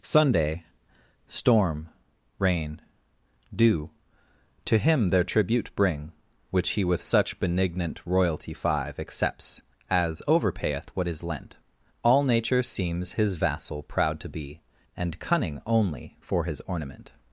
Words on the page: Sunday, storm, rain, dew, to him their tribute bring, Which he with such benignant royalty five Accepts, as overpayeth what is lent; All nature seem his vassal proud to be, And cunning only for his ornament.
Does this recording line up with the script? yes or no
no